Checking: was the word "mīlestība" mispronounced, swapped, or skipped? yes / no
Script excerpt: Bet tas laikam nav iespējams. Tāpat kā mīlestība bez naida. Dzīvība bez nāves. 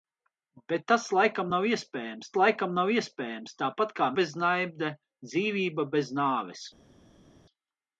yes